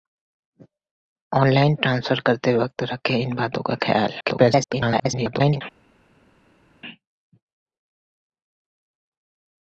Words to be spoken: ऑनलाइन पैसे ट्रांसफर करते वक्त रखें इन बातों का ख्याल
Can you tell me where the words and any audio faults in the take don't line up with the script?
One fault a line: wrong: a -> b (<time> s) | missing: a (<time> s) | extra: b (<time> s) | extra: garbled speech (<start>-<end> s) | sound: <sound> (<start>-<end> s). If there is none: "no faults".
missing: पैसे (1.8 s)
extra: garbled speech (4.2-5.6 s)